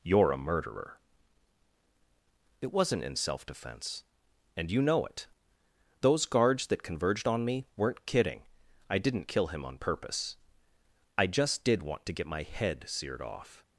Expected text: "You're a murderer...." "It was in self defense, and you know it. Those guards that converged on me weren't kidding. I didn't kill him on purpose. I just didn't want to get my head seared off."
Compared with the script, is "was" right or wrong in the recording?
wrong